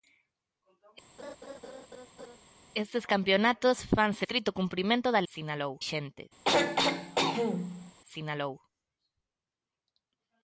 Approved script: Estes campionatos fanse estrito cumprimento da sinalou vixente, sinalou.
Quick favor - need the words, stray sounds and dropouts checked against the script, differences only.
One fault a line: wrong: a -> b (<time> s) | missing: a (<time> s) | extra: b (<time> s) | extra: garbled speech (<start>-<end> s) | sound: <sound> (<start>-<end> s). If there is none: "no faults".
sound: laugh (1.2-2.4 s)
sound: throat clearing (6.4-7.9 s)